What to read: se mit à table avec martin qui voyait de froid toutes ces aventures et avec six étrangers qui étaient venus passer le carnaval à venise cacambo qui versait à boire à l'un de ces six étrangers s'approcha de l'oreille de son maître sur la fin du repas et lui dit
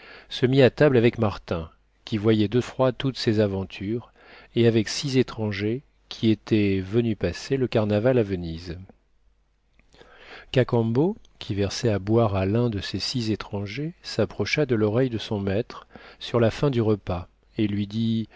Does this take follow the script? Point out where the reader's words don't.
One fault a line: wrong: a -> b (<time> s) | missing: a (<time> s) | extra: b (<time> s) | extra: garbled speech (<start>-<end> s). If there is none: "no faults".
no faults